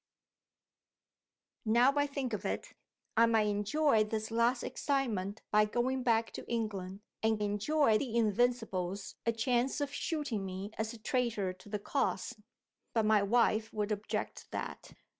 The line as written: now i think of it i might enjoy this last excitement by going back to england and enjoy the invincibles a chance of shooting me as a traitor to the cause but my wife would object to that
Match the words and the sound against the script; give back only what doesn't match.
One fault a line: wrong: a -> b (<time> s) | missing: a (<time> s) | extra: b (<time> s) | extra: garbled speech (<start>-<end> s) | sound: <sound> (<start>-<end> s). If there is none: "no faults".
no faults